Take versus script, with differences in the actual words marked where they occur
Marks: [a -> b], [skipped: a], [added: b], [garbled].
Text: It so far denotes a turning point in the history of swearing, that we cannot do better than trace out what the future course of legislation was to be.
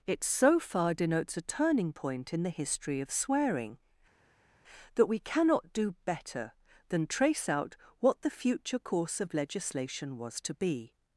It so far denotes a turning point in the history of swearing, that we cannot do better than trace out what the future course of legislation was to be.